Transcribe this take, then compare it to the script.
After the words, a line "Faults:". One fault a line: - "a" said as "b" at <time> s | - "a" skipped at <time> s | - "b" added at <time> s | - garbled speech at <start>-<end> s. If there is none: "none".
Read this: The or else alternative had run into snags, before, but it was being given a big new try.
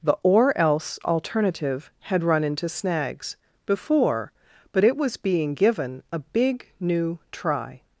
The or else alternative had run into snags, before, but it was being given a big new try.
Faults:
none